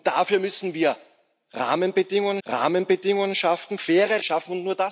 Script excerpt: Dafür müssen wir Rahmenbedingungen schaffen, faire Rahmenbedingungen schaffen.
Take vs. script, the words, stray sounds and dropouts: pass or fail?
fail